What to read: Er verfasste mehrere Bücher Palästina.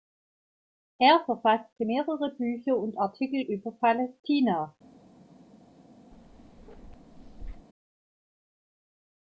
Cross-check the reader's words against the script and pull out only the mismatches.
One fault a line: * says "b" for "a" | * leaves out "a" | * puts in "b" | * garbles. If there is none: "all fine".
* puts in "und Artikel über"